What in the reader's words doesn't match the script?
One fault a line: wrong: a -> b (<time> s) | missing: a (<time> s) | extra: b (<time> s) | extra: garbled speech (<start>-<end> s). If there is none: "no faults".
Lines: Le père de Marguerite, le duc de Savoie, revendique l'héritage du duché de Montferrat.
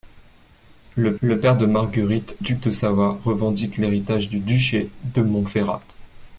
extra: le (1.2 s)
missing: le (2.4 s)